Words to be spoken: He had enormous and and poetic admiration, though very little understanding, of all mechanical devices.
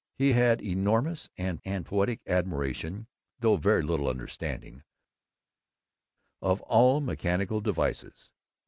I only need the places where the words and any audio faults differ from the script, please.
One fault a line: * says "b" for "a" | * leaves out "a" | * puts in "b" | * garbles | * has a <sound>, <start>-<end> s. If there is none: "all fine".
all fine